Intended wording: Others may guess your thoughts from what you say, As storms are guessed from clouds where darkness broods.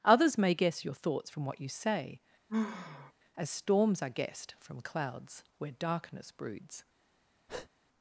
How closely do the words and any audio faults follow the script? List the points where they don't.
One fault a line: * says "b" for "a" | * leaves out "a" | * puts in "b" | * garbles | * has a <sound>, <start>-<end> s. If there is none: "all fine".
* has a sigh, 2.5-3.1 s
* has a breath, 7.5-7.7 s